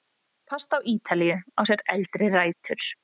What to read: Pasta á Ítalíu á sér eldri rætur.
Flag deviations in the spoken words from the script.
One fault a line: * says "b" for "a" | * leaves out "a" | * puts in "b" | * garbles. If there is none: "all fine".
all fine